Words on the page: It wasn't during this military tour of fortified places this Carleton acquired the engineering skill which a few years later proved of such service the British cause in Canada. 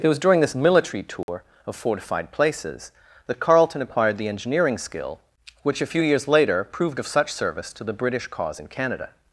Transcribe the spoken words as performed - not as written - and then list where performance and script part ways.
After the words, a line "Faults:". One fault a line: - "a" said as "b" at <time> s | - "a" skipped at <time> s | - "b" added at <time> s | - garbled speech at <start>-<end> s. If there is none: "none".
It was during this military tour of fortified places that Carleton acquired the engineering skill which a few years later proved of such service to the British cause in Canada.
Faults:
- "wasn't" said as "was" at 0.1 s
- "this" said as "that" at 3.3 s
- "to" added at 7.7 s